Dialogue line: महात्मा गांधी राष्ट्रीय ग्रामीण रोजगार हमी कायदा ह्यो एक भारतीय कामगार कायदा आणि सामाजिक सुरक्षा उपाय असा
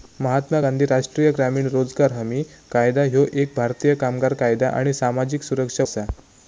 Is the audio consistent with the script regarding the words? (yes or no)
no